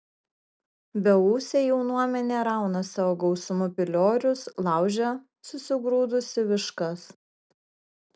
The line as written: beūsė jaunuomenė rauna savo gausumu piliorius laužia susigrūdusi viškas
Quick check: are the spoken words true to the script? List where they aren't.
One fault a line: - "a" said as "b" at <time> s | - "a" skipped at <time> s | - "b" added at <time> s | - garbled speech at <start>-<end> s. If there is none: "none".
none